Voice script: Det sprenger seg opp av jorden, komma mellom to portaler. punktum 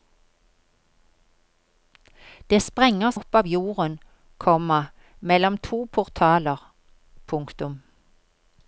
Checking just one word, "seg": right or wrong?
wrong